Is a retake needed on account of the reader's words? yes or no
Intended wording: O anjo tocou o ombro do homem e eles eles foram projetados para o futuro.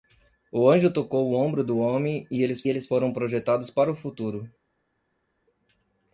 no